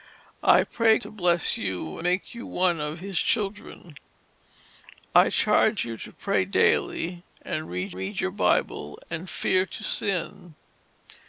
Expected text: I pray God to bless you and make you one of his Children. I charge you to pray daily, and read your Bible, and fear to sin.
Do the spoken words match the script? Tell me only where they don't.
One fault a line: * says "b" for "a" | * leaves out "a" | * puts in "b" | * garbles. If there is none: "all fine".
* leaves out "God"
* leaves out "and"
* puts in "read"